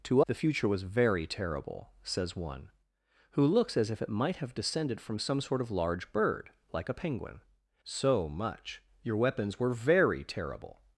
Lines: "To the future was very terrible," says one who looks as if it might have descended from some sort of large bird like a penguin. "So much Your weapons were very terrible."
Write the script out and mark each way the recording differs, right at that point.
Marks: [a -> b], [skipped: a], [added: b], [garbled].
"To the future was very terrible," says one who looks as if it might have descended from some sort of large bird like a penguin. "So much Your weapons were very terrible."